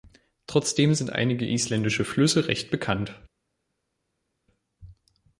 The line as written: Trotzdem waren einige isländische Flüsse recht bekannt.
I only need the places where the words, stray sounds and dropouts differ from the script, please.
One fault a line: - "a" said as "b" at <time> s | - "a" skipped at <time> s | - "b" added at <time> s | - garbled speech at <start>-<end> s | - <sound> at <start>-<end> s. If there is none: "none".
- "waren" said as "sind" at 0.9 s